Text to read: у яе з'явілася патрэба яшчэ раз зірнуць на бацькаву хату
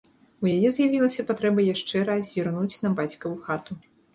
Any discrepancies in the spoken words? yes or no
no